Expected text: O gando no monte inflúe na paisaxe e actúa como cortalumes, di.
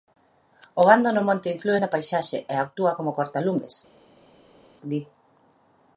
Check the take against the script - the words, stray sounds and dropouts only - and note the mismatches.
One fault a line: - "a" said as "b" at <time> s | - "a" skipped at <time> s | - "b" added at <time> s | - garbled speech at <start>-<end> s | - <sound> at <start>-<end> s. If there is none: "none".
none